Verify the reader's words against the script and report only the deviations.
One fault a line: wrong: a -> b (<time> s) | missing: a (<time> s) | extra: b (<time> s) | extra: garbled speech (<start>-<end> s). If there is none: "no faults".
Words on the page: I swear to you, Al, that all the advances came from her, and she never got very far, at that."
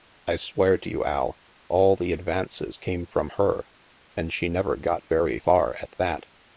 missing: that (1.4 s)